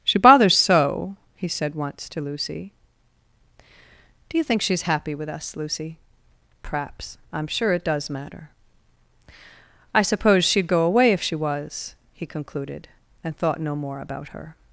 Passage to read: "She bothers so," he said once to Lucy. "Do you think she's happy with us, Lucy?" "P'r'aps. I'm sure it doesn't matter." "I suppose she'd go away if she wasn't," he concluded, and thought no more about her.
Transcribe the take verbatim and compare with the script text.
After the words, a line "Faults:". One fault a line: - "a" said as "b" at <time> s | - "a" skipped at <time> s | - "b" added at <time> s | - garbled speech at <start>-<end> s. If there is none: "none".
"She bothers so," he said once to Lucy. "Do you think she's happy with us, Lucy?" "P'r'aps. I'm sure it does matter." "I suppose she'd go away if she was," he concluded, and thought no more about her.
Faults:
- "doesn't" said as "does" at 7.8 s
- "wasn't" said as "was" at 11.3 s